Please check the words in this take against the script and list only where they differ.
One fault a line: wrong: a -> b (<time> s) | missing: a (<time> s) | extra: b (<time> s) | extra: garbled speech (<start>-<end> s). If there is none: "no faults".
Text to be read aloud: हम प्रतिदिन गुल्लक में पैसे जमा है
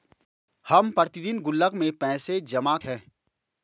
no faults